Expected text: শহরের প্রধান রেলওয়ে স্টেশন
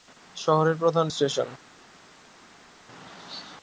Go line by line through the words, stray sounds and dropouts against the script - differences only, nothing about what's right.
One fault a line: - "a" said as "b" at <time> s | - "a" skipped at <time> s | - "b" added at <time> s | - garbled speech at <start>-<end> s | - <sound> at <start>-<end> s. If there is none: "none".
- "রেলওয়ে" skipped at 1.1 s